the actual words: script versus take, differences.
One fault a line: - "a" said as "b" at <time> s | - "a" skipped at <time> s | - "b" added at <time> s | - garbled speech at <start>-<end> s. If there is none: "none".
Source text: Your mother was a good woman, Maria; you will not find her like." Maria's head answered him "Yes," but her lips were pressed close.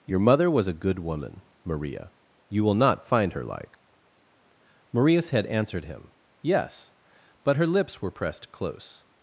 none